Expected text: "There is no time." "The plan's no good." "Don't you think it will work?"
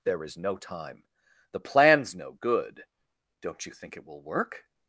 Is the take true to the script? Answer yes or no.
yes